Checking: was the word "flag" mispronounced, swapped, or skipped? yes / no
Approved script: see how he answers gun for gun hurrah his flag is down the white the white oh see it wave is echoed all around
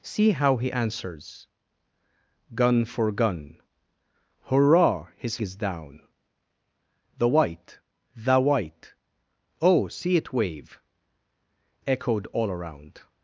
yes